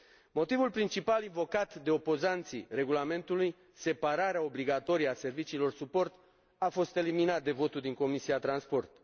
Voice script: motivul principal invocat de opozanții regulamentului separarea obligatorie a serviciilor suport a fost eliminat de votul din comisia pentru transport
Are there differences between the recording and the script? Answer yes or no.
no